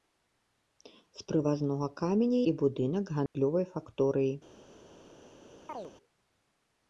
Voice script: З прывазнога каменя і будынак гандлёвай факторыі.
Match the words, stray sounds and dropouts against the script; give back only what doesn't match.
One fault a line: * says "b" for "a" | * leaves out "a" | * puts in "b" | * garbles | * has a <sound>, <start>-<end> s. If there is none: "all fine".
* has a dropout, 3.3-3.3 s
* has a chirp, 5.7-5.9 s